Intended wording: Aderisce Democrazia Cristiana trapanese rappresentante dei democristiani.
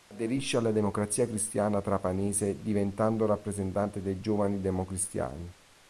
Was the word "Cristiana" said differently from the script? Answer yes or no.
no